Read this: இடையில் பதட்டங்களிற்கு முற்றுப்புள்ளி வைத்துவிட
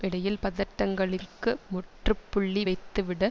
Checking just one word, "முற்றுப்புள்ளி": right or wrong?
right